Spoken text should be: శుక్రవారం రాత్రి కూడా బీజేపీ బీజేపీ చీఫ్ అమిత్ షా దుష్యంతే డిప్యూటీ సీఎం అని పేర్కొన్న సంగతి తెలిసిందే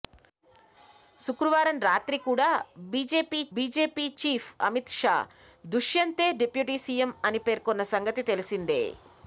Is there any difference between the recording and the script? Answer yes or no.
no